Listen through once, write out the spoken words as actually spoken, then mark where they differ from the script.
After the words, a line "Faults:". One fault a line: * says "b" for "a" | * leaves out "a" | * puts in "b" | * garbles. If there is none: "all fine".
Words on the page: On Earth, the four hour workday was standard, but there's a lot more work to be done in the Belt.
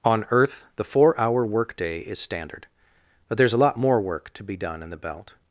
On Earth, the four hour workday is standard, but there's a lot more work to be done in the Belt.
Faults:
* says "is" for "was"